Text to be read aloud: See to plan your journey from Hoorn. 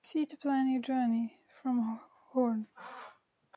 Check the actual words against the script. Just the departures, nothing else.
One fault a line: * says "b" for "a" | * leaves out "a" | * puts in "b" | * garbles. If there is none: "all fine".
all fine